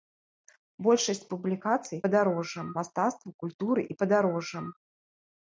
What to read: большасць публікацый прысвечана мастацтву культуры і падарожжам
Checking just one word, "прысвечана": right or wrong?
wrong